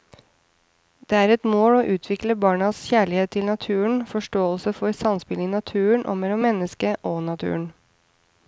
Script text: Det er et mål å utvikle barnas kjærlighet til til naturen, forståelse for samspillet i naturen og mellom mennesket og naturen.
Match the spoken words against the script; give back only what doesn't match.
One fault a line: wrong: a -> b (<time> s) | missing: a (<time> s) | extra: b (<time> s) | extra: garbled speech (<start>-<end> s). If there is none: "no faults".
missing: til (3.5 s)